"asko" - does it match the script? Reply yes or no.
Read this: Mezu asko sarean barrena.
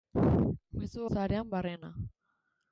no